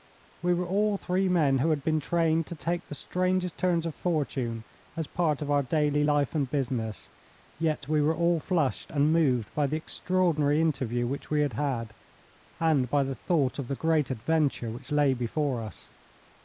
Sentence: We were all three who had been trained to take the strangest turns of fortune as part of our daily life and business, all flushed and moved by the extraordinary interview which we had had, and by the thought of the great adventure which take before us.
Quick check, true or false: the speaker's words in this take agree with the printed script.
false